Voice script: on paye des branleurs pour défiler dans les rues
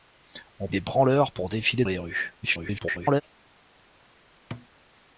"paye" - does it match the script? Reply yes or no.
no